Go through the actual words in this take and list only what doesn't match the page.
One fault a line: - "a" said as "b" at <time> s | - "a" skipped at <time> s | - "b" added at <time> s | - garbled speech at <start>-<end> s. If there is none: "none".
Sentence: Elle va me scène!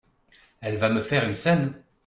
- "faire une" added at 1.0 s